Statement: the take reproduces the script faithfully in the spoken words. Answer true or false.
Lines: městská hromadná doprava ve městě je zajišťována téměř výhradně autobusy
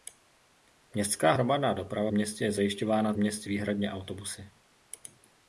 false